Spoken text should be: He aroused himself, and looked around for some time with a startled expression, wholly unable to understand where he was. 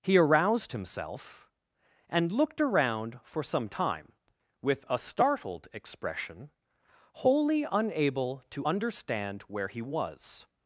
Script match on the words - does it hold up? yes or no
yes